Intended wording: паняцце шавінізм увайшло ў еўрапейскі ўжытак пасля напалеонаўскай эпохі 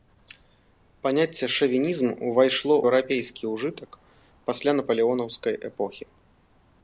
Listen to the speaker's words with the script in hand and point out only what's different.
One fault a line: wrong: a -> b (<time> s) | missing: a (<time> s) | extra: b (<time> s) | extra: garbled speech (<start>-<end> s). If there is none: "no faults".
missing: ў (2.8 s)